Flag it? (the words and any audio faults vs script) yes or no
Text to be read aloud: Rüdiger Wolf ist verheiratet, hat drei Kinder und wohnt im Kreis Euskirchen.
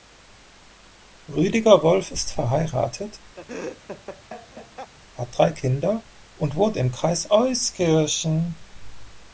yes